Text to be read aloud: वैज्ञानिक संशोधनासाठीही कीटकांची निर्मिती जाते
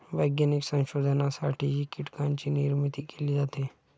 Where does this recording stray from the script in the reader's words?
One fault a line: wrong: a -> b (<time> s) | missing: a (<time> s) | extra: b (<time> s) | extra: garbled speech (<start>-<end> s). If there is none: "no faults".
extra: केली (3.0 s)